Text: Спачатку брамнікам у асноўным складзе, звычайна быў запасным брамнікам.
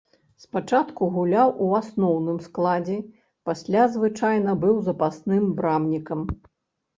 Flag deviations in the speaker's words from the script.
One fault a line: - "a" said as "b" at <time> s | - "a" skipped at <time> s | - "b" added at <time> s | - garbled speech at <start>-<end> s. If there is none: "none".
- "брамнікам" said as "гуляў" at 1.2 s
- "пасля" added at 3.5 s